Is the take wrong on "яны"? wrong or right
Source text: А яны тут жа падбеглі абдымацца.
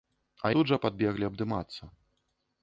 wrong